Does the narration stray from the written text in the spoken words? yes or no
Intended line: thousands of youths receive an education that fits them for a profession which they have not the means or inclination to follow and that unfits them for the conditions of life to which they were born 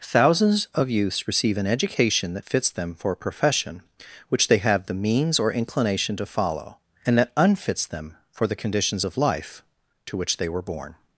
yes